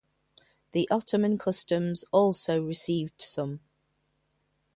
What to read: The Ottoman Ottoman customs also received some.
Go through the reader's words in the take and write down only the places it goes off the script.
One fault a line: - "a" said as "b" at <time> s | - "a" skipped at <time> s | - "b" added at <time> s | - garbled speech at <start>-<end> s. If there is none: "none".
- "Ottoman" skipped at 1.4 s